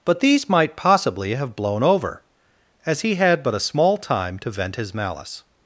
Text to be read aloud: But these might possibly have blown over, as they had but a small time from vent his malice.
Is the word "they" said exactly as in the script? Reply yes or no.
no